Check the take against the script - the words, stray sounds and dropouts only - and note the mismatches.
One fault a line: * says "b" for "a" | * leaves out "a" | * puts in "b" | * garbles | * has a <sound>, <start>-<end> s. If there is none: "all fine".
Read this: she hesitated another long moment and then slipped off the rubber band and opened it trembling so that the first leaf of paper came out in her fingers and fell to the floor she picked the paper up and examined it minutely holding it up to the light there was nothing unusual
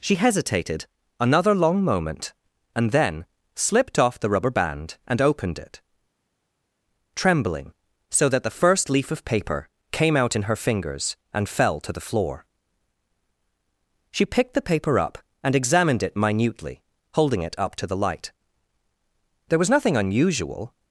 all fine